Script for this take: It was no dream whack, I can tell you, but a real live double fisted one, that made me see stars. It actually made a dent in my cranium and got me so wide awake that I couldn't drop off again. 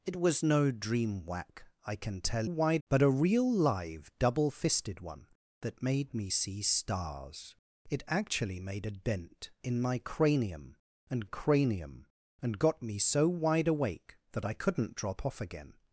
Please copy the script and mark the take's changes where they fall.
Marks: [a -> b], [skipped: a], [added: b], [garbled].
It was no dream whack, I can tell [you, -> wide] but a real live double fisted one, that made me see stars. It actually made a dent in my cranium and [added: cranium and] got me so wide awake that I couldn't drop off again.